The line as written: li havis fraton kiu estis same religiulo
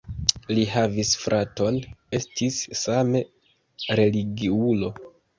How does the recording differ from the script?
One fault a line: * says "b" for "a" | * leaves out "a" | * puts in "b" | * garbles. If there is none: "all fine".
* leaves out "kiu"